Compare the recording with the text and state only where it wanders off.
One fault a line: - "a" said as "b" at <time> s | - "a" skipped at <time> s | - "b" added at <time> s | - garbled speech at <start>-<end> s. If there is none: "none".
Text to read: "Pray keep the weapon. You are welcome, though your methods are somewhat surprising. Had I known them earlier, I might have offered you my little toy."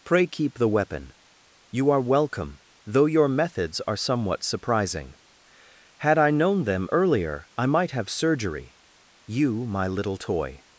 - "offered" said as "surgery" at 8.1 s